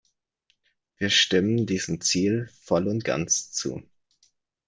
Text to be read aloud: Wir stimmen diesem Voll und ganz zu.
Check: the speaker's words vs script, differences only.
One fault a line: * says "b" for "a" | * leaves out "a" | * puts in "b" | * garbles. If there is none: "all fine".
* puts in "Ziel"